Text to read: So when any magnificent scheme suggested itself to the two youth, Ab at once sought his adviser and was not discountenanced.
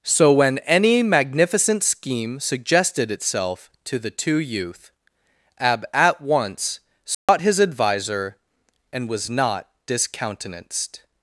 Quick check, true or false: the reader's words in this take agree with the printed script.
true